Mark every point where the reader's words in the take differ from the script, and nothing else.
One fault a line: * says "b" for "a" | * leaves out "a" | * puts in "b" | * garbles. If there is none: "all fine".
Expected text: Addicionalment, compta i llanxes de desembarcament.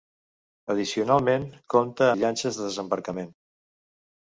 all fine